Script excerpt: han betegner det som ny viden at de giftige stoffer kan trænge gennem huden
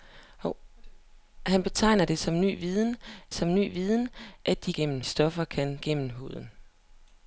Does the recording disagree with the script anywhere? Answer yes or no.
yes